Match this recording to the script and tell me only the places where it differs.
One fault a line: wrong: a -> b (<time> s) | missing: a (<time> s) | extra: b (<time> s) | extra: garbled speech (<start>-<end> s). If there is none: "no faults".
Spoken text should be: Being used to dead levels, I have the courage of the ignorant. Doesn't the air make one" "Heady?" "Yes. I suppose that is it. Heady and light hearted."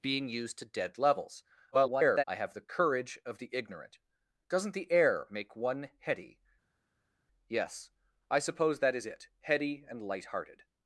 extra: garbled speech (1.7-2.2 s)